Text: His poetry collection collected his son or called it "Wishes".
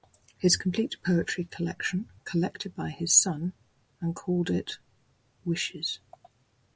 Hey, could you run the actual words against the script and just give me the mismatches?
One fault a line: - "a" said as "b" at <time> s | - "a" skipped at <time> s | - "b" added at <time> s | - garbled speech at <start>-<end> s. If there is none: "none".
- "complete" added at 0.6 s
- "by" added at 2.7 s
- "or" said as "and" at 4.0 s